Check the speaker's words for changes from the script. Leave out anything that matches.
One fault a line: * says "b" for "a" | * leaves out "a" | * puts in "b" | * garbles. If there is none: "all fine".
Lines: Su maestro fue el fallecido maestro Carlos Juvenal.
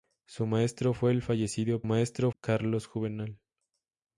all fine